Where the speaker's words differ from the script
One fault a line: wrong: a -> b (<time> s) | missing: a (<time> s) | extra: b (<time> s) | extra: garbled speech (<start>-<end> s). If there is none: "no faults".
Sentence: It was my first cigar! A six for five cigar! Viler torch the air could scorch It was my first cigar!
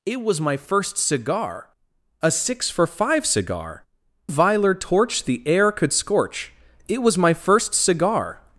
no faults